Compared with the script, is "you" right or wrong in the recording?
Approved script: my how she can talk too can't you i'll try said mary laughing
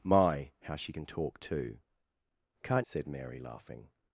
wrong